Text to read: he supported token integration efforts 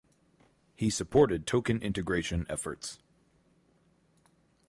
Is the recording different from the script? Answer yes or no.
no